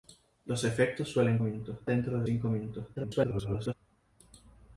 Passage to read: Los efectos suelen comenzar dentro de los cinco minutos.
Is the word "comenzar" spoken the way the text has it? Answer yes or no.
no